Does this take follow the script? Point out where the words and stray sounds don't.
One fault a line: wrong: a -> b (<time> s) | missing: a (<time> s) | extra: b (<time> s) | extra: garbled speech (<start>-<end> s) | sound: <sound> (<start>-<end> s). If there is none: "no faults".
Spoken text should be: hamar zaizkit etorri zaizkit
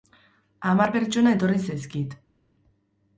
wrong: zaizkit -> pertsona (0.9 s)